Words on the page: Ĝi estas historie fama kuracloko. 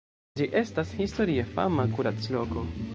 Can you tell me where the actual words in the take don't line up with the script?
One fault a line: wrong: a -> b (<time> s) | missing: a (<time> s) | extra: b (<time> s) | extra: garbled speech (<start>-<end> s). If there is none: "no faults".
no faults